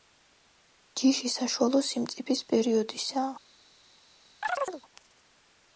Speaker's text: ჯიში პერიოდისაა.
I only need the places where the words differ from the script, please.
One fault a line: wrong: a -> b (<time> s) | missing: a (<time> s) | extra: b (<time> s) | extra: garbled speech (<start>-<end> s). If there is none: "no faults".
extra: საშუალო სიმწიფის (1.3 s)